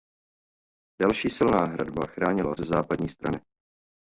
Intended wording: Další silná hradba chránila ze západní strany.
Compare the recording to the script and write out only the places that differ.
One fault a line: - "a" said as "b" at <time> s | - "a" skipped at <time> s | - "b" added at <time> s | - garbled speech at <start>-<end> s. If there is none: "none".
none